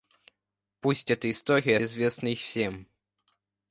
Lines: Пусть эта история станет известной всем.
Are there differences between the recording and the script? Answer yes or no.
yes